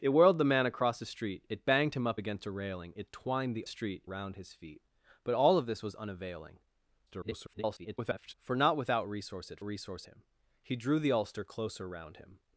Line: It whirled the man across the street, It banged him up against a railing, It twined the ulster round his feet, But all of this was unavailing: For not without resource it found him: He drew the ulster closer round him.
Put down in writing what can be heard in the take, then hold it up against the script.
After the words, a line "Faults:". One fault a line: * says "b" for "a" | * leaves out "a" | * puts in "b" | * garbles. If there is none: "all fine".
It whirled the man across the street, It banged him up against a railing, It twined the street round his feet, But all of this was unavailing: [garbled] For not without resource it resource him: He drew the ulster closer round him.
Faults:
* says "street" for "ulster"
* garbles
* says "resource" for "found"